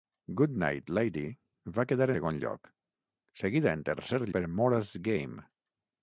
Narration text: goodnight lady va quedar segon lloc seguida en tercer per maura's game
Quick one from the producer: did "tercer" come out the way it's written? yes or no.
yes